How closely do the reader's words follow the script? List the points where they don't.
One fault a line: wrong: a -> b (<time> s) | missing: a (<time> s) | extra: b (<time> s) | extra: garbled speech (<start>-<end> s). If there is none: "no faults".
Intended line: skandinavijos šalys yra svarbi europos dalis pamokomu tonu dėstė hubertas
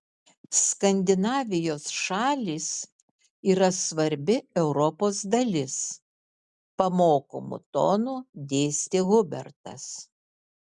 no faults